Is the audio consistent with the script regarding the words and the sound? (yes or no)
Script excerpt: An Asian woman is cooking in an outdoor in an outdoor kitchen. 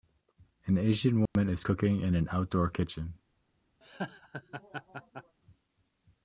no